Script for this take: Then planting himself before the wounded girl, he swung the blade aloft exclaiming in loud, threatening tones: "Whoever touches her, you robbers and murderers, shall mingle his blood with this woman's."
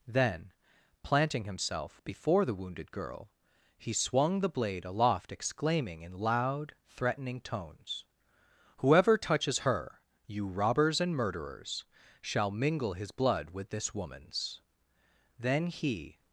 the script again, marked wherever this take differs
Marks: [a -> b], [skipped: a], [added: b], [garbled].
Then planting himself before the wounded girl, he swung the blade aloft exclaiming in loud, threatening tones: "Whoever touches her, you robbers and murderers, shall mingle his blood with this woman's." [added: Then he]